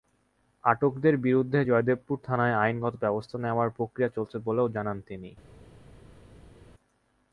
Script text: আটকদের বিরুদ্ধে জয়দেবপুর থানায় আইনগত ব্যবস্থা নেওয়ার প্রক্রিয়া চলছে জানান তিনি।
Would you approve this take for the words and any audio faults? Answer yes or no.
no